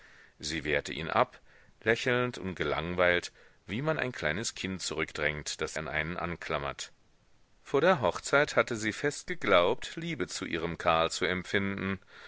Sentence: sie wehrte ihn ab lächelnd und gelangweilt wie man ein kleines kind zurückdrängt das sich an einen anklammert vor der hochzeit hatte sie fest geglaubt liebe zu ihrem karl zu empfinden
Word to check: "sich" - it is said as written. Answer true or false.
false